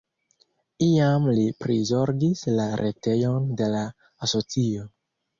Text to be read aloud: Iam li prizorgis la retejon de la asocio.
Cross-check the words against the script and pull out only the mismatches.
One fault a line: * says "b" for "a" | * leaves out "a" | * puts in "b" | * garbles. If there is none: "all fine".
all fine